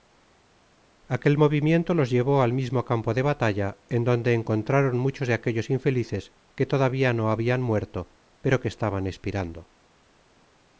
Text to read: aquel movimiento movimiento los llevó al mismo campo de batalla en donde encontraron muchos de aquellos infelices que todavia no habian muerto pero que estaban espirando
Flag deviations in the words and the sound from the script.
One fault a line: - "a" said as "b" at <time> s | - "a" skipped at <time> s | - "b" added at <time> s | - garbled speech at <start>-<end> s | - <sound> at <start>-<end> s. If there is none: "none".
- "movimiento" skipped at 1.9 s